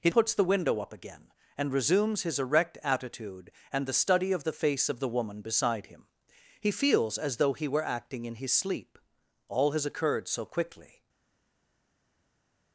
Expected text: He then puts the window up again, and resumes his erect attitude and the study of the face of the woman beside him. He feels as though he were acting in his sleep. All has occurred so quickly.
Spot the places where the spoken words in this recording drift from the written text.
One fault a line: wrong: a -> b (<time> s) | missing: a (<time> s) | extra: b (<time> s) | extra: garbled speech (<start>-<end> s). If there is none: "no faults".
missing: then (0.1 s)